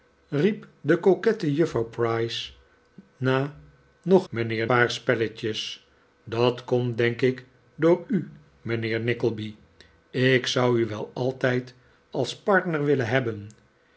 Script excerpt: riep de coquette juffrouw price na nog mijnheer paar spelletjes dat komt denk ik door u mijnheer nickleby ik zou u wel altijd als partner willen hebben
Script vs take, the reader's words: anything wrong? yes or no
no